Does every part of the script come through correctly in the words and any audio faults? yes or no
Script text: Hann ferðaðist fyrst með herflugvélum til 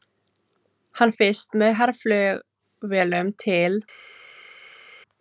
no